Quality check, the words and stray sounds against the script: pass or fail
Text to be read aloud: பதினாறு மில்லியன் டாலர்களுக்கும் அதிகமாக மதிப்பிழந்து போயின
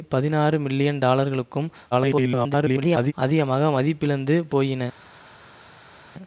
fail